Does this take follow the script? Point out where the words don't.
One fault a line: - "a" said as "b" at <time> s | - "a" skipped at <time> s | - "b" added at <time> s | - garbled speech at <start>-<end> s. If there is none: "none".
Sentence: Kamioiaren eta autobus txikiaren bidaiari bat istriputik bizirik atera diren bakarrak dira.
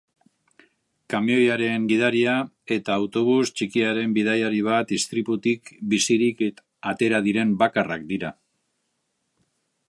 - "gidaria" added at 1.9 s